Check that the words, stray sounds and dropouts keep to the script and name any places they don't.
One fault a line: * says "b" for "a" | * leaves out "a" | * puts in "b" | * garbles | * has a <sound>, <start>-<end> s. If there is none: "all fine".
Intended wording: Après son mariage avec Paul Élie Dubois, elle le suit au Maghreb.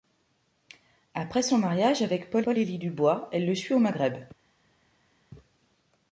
* puts in "Paul"